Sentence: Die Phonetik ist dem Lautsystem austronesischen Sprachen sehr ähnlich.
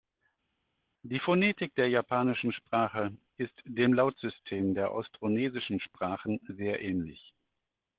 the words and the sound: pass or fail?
fail